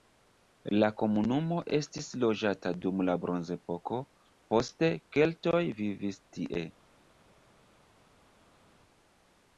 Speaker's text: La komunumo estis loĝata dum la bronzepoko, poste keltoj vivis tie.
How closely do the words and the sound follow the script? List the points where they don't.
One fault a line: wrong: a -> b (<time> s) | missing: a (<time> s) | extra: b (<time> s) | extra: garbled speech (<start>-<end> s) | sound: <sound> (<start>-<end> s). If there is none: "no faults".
no faults